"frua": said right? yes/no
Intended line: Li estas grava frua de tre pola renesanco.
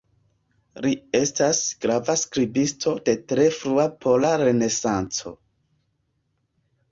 no